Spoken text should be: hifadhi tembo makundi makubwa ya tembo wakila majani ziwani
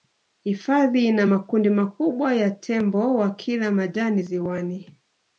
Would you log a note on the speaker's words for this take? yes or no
yes